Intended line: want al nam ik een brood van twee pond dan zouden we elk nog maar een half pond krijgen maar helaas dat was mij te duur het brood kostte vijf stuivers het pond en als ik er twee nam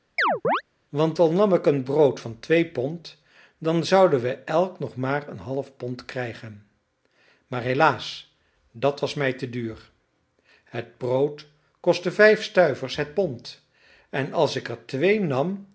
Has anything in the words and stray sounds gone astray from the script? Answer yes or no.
yes